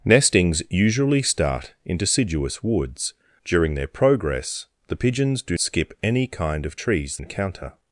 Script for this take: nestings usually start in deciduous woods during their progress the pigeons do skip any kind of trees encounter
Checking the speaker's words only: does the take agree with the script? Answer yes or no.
yes